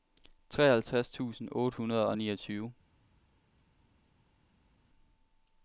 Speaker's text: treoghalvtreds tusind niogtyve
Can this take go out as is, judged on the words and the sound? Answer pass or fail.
fail